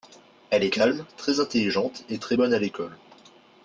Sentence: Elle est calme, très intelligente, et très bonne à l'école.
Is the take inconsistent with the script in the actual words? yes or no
no